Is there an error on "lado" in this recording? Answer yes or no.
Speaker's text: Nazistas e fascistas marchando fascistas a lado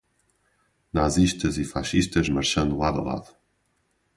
no